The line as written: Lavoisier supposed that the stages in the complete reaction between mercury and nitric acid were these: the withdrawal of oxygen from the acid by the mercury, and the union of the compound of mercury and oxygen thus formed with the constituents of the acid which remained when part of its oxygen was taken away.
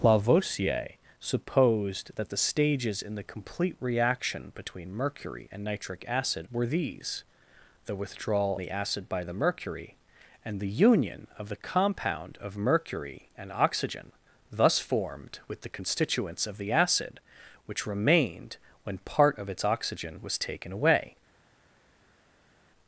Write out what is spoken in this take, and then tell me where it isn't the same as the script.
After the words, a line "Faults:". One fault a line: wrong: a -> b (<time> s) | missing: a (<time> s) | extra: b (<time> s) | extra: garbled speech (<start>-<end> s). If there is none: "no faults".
Lavoisier supposed that the stages in the complete reaction between mercury and nitric acid were these: the withdrawal the acid by the mercury, and the union of the compound of mercury and oxygen thus formed with the constituents of the acid which remained when part of its oxygen was taken away.
Faults:
missing: of oxygen from (8.6 s)